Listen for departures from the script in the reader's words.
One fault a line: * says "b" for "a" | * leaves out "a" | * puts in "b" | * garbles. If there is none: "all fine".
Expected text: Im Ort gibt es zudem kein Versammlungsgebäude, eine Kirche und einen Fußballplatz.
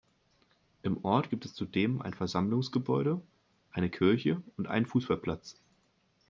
* says "ein" for "kein"